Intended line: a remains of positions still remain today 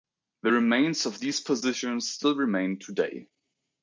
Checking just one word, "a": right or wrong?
wrong